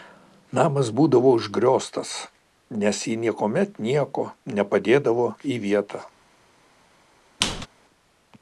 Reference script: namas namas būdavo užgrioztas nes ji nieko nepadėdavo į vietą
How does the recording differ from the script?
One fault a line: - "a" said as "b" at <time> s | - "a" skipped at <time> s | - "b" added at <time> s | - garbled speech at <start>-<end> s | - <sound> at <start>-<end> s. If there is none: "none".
- "namas" skipped at 0.9 s
- "niekuomet" added at 3.2 s
- squeak at 7.4-7.7 s